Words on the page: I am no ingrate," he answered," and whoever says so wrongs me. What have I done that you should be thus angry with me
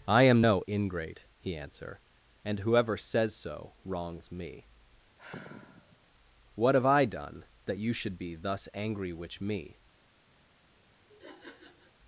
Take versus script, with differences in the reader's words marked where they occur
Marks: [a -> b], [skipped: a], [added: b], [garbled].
I am no ingrate," he [answered," -> answer] and whoever says so wrongs me. What have I done that you should be thus angry [with -> which] me